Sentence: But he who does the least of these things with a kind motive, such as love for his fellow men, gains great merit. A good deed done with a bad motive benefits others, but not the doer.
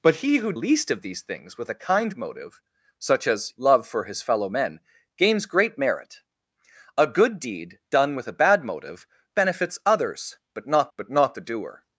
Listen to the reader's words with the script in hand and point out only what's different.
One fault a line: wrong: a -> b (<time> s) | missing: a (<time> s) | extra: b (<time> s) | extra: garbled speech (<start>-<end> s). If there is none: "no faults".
missing: does the (0.5 s)
extra: but not (11.0 s)